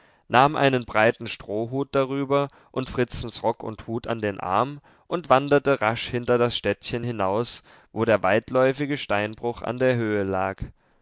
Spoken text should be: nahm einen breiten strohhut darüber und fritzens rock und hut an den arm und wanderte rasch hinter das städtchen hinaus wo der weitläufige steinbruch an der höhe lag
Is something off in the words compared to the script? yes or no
no